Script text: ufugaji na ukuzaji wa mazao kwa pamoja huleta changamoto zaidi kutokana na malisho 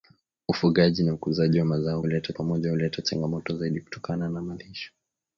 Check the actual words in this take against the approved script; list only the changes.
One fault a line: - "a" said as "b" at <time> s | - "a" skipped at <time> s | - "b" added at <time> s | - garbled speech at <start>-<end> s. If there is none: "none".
- "kwa" said as "huleta" at 2.0 s